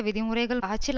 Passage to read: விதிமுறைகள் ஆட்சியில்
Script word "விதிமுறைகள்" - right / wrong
right